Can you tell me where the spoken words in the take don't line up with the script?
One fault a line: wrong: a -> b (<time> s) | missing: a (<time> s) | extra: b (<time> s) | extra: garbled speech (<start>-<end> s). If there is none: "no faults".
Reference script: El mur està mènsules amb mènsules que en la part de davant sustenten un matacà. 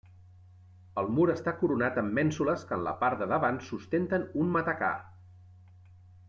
wrong: mènsules -> coronat (1.6 s)